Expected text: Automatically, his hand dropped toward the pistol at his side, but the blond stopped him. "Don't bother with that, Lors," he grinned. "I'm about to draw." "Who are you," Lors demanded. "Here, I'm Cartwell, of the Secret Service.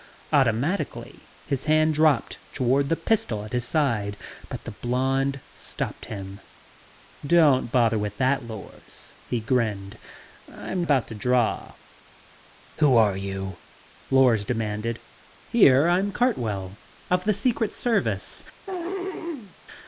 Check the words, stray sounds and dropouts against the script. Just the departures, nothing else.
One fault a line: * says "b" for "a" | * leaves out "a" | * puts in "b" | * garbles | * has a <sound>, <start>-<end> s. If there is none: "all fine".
* has a throat clearing, 18.7-19.5 s